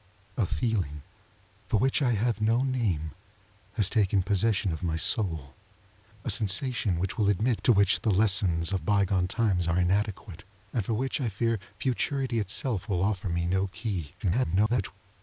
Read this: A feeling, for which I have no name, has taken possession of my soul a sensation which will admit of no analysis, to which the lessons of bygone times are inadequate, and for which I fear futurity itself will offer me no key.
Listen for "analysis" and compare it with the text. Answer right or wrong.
wrong